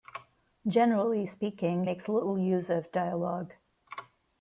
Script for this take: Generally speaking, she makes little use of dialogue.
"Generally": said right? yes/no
yes